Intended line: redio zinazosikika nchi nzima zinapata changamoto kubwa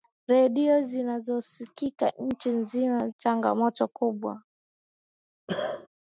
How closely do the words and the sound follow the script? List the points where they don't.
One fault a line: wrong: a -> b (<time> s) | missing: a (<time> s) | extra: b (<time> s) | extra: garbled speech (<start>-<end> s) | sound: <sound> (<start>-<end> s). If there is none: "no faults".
missing: zinapata (3.1 s)
sound: cough (5.5-5.9 s)